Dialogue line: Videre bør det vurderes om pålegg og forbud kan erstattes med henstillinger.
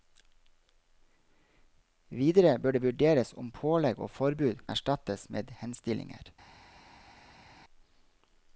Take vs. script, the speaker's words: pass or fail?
fail